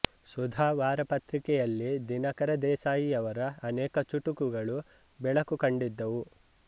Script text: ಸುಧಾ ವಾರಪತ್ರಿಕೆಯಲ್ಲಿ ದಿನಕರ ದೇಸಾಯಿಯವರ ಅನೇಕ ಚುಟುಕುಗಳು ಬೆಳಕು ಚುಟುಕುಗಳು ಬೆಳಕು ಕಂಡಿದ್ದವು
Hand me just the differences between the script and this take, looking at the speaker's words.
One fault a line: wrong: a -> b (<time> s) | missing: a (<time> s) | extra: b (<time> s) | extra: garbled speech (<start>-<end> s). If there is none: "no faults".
missing: ಚುಟುಕುಗಳು ಬೆಳಕು (5.6 s)